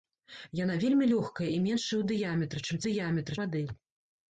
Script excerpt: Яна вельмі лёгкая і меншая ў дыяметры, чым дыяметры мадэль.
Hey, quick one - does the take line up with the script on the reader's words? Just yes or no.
yes